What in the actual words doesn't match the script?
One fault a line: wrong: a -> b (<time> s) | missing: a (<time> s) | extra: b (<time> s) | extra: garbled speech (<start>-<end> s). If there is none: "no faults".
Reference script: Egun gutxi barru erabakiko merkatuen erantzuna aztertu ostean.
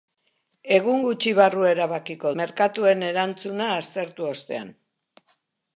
no faults